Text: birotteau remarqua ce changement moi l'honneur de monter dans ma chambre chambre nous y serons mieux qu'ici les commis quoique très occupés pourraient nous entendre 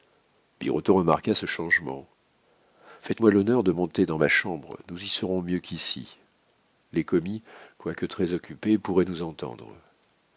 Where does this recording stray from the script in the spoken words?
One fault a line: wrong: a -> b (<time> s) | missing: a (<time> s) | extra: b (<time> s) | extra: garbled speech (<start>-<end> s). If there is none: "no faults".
extra: faites (3.0 s)
missing: chambre (4.8 s)